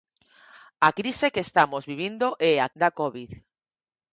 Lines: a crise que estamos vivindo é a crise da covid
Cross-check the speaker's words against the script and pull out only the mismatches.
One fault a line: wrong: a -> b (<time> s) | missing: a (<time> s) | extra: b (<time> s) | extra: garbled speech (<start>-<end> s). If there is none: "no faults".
missing: crise (2.7 s)